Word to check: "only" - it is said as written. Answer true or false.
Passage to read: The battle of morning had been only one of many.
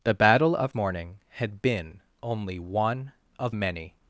true